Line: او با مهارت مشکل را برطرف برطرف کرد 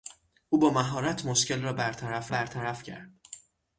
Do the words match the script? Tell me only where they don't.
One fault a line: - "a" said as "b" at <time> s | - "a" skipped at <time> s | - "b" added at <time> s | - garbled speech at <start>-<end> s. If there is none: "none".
none